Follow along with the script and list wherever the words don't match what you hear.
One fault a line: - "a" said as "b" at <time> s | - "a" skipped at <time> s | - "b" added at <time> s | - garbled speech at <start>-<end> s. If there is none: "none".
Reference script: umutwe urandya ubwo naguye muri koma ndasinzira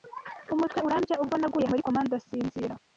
none